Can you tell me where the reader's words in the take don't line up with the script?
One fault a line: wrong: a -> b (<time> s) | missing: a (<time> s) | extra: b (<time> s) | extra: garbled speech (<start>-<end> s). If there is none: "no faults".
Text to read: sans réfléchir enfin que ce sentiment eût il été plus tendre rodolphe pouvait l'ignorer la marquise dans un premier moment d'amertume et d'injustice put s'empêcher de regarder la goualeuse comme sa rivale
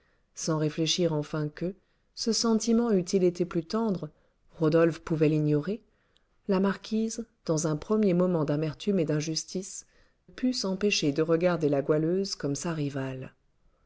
no faults